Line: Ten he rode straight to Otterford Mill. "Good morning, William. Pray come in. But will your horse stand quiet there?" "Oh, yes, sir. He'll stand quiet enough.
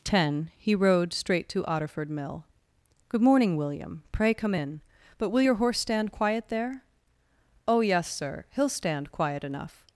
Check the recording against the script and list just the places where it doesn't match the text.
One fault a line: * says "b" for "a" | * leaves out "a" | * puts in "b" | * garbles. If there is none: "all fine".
all fine